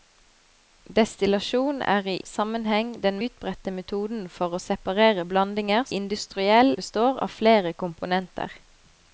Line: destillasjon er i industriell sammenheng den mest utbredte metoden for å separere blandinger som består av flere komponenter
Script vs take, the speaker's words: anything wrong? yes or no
yes